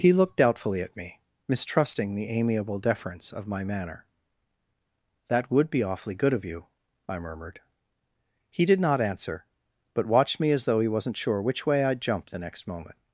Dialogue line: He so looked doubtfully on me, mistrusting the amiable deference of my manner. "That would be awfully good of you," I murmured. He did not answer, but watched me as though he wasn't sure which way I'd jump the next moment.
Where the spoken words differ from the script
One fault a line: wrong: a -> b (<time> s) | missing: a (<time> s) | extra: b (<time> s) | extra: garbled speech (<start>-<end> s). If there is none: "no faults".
missing: so (0.1 s)
wrong: on -> at (0.8 s)